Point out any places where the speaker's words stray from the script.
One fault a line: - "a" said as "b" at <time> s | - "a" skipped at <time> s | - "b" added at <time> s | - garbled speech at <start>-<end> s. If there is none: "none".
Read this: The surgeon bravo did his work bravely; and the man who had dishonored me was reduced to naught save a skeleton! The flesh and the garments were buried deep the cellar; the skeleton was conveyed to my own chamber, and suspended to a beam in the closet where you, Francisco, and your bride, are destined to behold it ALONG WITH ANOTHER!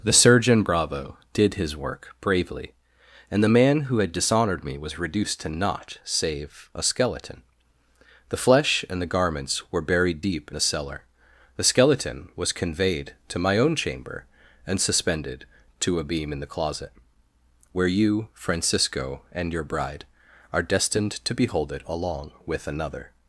none